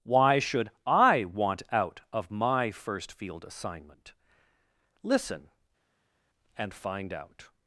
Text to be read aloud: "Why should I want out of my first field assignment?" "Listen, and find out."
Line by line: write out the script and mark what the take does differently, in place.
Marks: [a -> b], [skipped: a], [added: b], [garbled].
"Why should I want out of my first field assignment?" "Listen, and find out."